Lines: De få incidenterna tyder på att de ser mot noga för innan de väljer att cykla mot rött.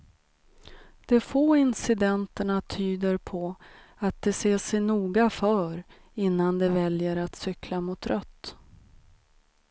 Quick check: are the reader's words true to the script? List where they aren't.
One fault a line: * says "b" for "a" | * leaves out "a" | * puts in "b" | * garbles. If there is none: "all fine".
* says "sig" for "mot"